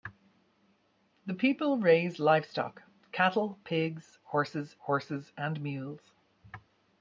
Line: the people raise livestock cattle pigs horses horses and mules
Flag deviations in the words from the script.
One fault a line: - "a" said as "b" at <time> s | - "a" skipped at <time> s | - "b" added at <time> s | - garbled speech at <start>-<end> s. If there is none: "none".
none